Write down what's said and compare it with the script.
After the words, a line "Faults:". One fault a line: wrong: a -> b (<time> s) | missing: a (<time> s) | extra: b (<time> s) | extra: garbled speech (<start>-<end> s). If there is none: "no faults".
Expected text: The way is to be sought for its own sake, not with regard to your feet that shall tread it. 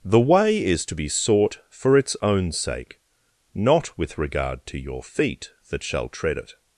The way is to be sought for its own sake, not with regard to your feet that shall tread it.
Faults:
no faults